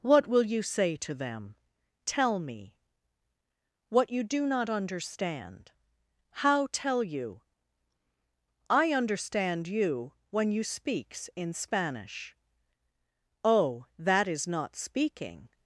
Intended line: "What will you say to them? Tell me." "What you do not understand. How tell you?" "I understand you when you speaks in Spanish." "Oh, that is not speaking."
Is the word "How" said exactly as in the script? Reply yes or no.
yes